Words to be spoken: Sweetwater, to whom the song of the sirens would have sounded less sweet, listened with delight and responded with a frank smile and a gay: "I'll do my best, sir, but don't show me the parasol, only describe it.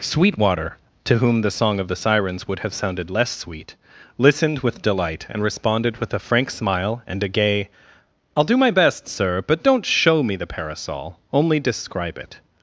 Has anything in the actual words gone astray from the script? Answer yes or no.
no